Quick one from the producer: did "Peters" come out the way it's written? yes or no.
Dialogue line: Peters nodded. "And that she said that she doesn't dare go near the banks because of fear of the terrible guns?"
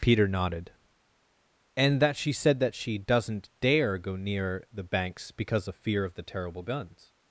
no